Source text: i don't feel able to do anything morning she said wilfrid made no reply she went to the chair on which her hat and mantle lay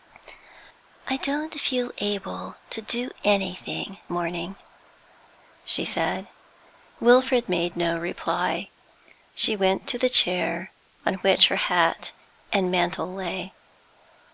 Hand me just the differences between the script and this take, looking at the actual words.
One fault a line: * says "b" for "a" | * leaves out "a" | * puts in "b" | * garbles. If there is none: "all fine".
all fine